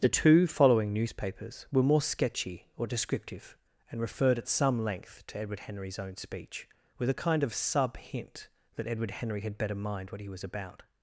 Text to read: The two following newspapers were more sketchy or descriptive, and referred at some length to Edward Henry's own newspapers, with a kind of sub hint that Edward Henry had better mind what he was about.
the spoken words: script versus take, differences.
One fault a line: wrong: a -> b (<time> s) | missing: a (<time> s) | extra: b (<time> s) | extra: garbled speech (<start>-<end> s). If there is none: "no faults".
wrong: newspapers -> speech (6.1 s)